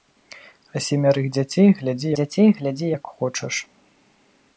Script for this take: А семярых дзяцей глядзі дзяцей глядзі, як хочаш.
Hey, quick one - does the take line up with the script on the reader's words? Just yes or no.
yes